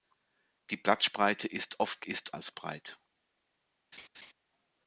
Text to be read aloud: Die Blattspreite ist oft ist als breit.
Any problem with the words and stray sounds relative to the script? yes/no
yes